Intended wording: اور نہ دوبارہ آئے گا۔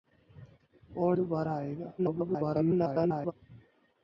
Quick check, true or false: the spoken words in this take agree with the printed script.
false